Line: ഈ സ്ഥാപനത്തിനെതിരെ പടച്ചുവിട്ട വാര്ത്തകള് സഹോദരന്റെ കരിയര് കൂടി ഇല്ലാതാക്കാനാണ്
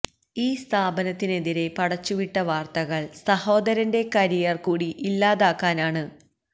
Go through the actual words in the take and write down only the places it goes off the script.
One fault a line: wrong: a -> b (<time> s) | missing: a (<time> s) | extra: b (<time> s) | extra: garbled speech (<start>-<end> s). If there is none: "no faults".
no faults